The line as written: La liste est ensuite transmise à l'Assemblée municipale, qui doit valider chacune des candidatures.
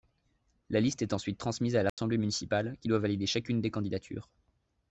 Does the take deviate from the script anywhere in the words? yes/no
no